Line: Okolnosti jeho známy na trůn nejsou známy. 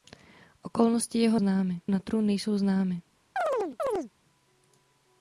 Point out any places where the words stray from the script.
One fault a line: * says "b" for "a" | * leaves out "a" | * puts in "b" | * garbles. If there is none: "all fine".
all fine